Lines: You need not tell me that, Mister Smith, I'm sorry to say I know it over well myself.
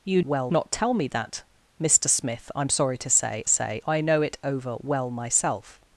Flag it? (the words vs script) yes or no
yes